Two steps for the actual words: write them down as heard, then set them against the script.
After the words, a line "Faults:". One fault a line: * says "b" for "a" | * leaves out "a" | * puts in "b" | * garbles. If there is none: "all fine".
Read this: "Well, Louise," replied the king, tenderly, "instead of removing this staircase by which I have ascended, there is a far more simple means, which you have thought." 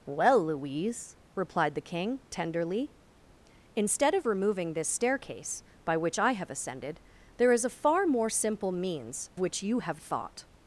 "Well, Louise," replied the king, tenderly, "instead of removing this staircase by which I have ascended, there is a far more simple means, which you have thought."
Faults:
all fine